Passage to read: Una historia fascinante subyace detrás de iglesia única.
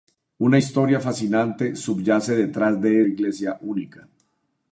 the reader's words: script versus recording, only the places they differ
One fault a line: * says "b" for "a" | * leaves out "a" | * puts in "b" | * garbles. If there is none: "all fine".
all fine